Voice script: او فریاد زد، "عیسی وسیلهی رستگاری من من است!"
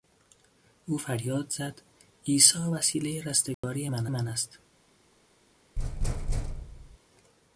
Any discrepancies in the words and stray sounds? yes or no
yes